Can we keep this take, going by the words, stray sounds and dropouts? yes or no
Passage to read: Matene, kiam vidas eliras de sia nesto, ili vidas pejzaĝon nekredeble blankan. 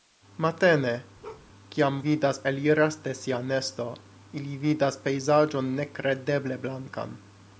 no